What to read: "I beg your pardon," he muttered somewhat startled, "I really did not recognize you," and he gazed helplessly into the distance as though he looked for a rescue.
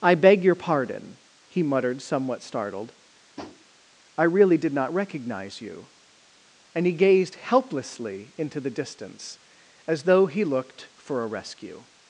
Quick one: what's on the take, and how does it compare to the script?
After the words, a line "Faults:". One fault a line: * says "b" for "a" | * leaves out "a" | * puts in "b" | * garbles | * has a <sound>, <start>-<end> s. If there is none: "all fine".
"I beg your pardon," he muttered somewhat startled, "I really did not recognize you," and he gazed helplessly into the distance as though he looked for a rescue.
Faults:
* has a tap, 3.4-3.7 s